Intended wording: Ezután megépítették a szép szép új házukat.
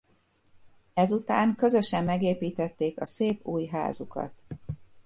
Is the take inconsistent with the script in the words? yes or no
yes